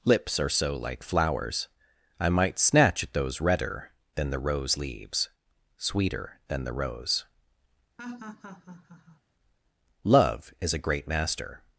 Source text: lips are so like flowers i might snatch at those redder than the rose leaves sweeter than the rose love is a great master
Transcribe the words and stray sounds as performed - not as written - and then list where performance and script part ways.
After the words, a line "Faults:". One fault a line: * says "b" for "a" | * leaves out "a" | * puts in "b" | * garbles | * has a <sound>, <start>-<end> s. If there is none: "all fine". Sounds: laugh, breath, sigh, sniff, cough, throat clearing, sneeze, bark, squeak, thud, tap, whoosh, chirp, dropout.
lips are so like flowers i might snatch at those redder than the rose leaves sweeter than the rose love is a great master
Faults:
* has a laugh, 8.0-9.2 s